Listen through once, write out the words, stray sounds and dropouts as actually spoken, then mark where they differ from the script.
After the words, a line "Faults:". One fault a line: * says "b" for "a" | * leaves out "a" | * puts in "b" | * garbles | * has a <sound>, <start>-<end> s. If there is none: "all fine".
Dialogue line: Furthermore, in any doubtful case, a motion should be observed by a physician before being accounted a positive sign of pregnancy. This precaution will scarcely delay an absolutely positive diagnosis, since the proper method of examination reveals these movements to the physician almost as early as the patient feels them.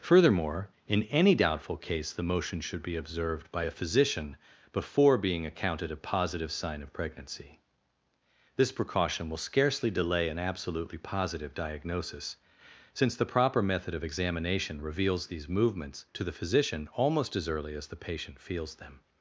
Furthermore, in any doubtful case, the motion should be observed by a physician before being accounted a positive sign of pregnancy. This precaution will scarcely delay an absolutely positive diagnosis, since the proper method of examination reveals these movements to the physician almost as early as the patient feels them.
Faults:
* says "the" for "a"